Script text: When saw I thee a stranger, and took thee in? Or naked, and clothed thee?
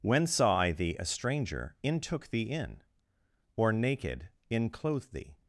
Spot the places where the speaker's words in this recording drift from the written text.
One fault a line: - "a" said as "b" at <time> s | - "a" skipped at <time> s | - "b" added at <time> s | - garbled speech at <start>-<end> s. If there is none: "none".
- "and" said as "in" at 1.8 s
- "and" said as "in" at 4.5 s